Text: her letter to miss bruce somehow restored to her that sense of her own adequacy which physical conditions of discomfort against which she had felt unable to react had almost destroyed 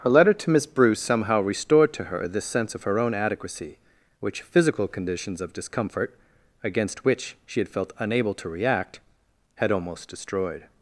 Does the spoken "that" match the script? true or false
false